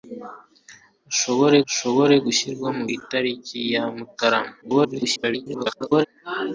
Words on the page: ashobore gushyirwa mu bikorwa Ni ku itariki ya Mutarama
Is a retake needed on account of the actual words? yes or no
yes